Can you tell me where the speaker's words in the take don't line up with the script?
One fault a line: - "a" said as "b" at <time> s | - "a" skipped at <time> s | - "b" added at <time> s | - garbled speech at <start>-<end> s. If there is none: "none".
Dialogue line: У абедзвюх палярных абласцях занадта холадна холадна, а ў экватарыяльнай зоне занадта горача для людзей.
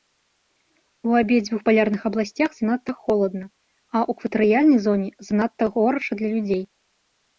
- "холадна" skipped at 3.4 s